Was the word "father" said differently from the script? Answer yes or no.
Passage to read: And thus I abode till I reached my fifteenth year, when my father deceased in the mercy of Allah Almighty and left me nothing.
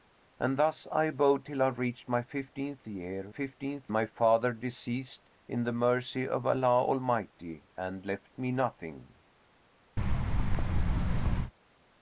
no